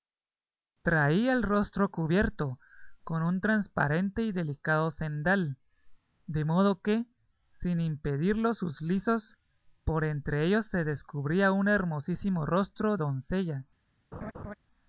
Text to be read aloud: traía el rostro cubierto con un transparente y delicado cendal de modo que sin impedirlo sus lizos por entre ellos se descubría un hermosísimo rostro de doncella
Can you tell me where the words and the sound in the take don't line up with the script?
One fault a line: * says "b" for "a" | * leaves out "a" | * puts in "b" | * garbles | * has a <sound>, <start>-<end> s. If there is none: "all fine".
* leaves out "de"
* has a laugh, 14.1-14.6 s